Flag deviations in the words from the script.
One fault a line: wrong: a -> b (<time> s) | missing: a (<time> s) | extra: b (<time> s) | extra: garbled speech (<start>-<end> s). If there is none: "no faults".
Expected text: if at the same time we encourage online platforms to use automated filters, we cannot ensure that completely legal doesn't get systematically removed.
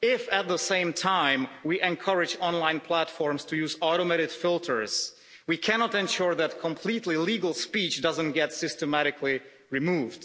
extra: speech (7.5 s)